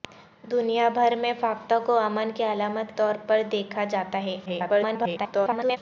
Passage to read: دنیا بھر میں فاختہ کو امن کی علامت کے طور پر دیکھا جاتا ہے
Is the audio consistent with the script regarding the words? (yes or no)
no